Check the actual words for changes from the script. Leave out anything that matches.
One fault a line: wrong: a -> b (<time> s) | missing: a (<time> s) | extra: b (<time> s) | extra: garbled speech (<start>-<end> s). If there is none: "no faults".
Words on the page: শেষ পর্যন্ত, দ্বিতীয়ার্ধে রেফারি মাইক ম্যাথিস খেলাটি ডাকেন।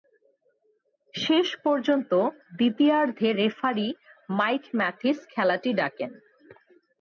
no faults